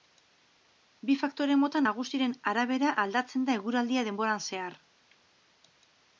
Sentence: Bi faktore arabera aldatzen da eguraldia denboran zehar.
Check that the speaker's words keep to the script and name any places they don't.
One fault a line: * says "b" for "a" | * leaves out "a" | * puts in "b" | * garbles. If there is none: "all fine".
* puts in "mota nagusiren"